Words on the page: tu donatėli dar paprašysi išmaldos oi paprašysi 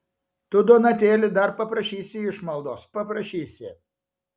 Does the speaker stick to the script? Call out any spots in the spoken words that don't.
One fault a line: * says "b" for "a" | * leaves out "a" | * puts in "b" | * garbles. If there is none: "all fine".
* leaves out "oi"